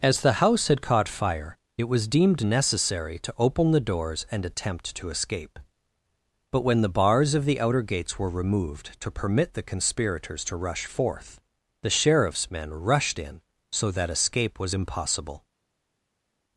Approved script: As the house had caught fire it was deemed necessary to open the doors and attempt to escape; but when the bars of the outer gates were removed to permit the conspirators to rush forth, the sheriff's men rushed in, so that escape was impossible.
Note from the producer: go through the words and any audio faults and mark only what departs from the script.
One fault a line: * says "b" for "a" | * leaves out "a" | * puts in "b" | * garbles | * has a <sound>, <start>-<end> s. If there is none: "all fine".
all fine